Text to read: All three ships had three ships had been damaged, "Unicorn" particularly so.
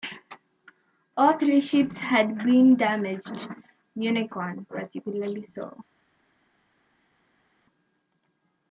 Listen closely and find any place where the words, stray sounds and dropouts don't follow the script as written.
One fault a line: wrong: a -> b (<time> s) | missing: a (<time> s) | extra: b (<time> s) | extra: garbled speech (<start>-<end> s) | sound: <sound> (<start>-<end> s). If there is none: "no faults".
missing: three ships had (2.4 s)